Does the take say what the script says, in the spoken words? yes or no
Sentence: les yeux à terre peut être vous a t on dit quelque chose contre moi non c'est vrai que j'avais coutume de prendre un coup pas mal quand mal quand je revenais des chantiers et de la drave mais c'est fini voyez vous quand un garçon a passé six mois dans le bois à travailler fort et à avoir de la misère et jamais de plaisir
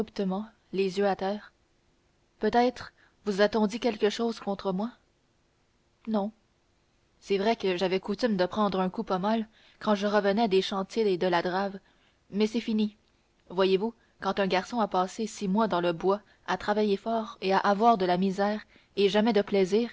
no